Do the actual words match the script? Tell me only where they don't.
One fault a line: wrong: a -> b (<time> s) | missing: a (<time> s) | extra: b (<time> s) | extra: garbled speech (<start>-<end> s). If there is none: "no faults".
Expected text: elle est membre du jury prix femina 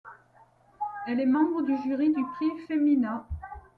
extra: du (2.1 s)